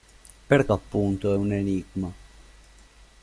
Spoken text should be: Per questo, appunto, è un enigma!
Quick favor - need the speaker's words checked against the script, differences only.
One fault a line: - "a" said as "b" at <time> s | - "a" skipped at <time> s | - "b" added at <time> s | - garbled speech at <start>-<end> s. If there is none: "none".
- "questo" skipped at 0.7 s